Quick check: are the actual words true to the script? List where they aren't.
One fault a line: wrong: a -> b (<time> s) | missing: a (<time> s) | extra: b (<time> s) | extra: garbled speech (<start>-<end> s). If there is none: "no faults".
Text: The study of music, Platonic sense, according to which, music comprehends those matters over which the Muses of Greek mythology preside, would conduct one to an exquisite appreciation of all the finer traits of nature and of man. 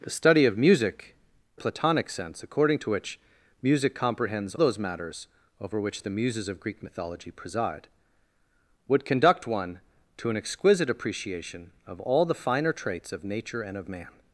no faults